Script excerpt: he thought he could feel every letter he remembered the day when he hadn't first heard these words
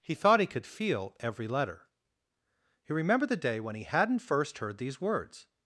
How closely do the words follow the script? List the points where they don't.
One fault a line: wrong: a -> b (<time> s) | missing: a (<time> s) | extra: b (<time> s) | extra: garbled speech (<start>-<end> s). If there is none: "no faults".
no faults